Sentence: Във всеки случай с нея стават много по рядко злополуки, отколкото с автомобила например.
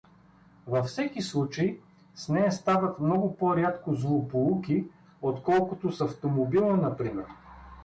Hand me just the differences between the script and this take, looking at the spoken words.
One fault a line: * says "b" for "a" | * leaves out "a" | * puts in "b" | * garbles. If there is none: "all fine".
all fine